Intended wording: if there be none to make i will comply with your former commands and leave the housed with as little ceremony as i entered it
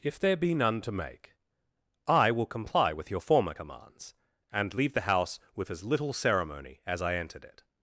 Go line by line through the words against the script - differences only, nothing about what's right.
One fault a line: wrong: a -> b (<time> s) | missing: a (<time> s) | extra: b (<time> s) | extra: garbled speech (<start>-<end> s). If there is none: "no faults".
wrong: housed -> house (5.1 s)